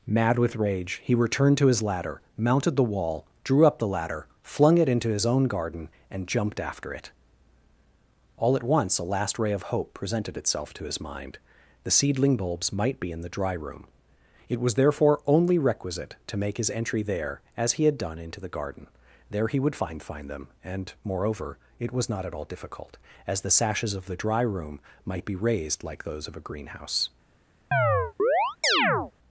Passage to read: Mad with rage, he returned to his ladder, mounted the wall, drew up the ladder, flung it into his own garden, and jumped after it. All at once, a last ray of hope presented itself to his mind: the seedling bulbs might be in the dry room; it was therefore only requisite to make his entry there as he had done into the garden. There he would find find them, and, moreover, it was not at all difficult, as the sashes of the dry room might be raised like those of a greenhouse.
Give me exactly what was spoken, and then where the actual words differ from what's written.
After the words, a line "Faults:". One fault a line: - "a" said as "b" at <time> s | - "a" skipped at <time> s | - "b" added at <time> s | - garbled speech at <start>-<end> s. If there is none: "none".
Mad with rage, he returned to his ladder, mounted the wall, drew up the ladder, flung it into his own garden, and jumped after it. All at once, a last ray of hope presented itself to his mind: the seedling bulbs might be in the dry room; it was therefore only requisite to make his entry there as he had done into the garden. There he would find find them, and, moreover, it was not at all difficult, as the sashes of the dry room might be raised like those of a greenhouse.
Faults:
none